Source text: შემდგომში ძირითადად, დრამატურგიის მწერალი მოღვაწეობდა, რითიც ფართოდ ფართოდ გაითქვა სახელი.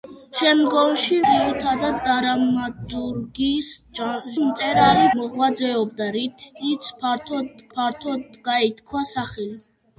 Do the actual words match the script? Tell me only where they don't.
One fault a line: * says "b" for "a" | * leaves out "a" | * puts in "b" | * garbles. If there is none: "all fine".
all fine